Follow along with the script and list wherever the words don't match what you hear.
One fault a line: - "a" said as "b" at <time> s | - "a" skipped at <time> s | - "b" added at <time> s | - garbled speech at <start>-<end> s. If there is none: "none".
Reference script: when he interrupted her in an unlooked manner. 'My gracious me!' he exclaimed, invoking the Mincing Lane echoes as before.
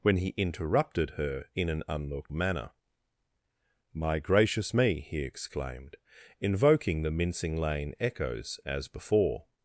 none